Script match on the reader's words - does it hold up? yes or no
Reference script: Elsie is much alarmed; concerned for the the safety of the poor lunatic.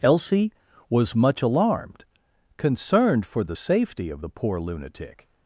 no